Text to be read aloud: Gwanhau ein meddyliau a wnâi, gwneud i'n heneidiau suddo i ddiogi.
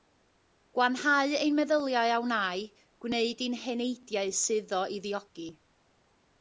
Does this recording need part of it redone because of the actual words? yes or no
no